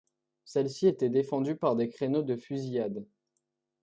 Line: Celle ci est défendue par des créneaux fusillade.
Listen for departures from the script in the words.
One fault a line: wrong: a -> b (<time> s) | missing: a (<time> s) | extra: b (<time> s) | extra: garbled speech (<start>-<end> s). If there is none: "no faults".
wrong: est -> était (0.9 s)
extra: de (2.2 s)